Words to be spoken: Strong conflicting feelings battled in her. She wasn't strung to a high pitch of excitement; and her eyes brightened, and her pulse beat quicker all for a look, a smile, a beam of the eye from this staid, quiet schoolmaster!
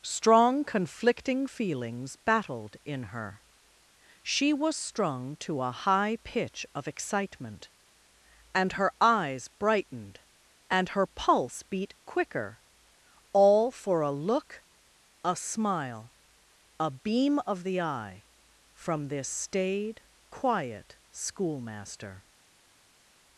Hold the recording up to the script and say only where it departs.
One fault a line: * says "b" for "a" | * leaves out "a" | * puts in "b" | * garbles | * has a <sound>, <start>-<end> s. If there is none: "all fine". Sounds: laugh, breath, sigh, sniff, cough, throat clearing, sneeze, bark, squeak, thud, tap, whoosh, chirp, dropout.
* says "was" for "wasn't"